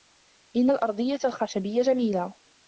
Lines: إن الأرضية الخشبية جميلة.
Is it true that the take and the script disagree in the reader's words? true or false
false